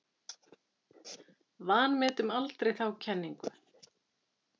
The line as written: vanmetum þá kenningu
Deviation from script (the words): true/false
true